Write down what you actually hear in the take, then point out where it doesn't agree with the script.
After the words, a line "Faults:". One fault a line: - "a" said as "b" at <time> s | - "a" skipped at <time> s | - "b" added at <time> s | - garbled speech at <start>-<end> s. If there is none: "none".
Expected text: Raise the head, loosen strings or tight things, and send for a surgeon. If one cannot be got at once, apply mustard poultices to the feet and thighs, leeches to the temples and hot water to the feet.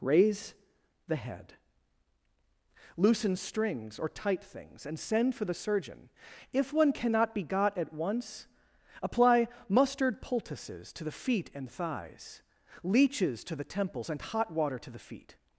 Raise the head, loosen strings or tight things, and send for the surgeon. If one cannot be got at once, apply mustard poultices to the feet and thighs, leeches to the temples and hot water to the feet.
Faults:
- "a" said as "the" at 5.4 s